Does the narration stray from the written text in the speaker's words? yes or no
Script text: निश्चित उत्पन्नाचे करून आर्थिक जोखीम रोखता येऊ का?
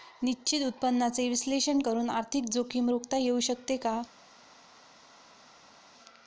yes